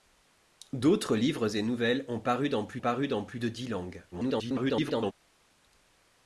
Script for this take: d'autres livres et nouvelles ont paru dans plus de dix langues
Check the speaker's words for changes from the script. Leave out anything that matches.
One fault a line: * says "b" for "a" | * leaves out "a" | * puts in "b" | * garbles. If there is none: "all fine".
* puts in "paru dans plus"
* garbles